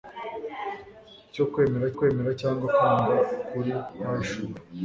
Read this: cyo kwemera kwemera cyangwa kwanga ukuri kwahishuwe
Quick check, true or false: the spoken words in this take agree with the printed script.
true